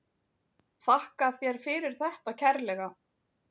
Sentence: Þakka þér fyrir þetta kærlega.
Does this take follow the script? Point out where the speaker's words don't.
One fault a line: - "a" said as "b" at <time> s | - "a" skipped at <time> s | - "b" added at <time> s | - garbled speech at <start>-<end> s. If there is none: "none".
none